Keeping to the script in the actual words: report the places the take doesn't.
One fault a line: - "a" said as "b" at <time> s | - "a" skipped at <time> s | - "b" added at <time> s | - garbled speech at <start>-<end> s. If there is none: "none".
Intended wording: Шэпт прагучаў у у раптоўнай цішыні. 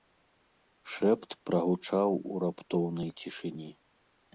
- "у" skipped at 2.4 s